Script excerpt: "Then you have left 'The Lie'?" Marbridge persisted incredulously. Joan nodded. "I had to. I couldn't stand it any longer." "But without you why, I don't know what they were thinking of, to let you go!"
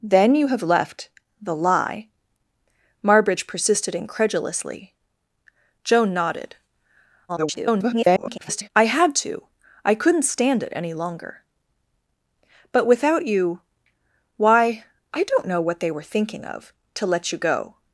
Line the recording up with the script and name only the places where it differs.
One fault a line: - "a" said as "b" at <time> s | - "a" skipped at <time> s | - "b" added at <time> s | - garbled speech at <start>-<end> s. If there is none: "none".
- garbled speech at 7.3-8.7 s